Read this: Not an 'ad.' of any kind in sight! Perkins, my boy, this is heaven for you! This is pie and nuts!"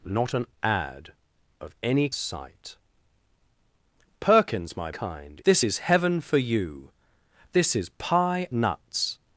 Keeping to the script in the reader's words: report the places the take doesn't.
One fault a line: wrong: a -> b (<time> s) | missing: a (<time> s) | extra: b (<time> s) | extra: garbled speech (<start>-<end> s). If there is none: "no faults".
missing: kind in (2.1 s)
wrong: boy -> kind (4.9 s)
missing: and (8.5 s)